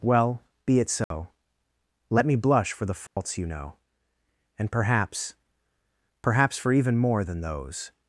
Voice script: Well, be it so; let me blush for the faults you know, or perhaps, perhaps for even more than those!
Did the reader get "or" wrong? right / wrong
wrong